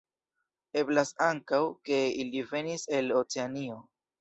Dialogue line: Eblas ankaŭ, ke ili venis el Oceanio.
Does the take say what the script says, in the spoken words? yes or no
yes